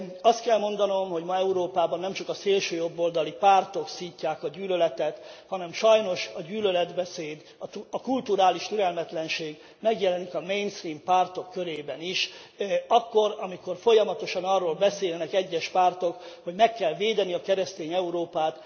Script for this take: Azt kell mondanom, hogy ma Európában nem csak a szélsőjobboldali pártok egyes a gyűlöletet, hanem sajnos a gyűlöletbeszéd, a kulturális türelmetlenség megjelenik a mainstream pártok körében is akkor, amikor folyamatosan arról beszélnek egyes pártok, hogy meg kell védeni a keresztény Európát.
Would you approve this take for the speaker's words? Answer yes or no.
no